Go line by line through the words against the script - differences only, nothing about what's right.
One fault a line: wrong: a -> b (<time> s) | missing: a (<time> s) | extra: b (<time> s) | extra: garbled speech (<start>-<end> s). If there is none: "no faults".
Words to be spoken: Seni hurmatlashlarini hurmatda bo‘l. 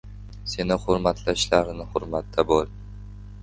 no faults